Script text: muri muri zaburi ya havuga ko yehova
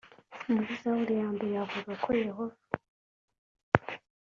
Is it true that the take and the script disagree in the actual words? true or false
true